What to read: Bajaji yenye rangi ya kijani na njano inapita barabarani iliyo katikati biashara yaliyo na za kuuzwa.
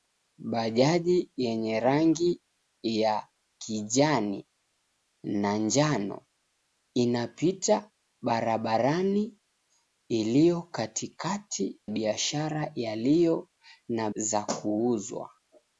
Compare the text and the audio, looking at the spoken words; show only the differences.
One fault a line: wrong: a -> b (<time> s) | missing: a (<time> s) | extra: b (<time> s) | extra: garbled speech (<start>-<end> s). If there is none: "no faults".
no faults